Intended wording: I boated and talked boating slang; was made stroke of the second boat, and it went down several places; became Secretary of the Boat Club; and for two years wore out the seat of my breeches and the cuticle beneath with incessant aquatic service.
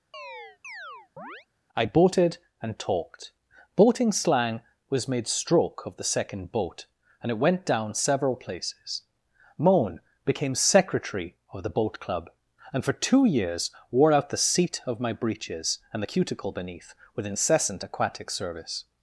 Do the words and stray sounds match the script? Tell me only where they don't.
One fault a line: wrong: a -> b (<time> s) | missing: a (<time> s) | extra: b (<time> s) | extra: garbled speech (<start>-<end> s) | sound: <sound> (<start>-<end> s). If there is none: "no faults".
sound: chirp (0.1-1.5 s)
extra: moan (9.6 s)